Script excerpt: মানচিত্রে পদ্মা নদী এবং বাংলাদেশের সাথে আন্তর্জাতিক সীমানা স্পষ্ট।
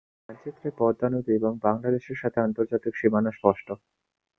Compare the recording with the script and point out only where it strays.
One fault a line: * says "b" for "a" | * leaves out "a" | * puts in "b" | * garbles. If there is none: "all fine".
all fine